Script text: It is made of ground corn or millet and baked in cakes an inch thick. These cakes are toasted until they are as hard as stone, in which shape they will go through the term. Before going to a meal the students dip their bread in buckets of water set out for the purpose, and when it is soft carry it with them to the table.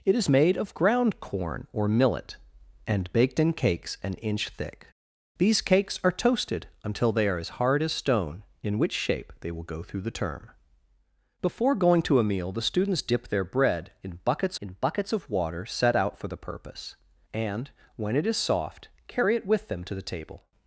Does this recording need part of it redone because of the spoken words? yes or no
yes